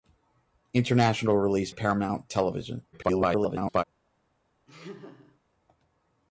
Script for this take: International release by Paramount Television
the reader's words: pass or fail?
fail